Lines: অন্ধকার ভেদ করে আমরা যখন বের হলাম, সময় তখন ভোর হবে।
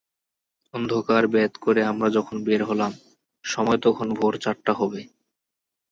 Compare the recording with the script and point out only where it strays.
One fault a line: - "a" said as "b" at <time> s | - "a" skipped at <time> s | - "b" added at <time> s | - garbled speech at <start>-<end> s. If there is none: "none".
- "চারটা" added at 4.4 s